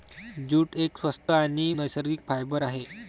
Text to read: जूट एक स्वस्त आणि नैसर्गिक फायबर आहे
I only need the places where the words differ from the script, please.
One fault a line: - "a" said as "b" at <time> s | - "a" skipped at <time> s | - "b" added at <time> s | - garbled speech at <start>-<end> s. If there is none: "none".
none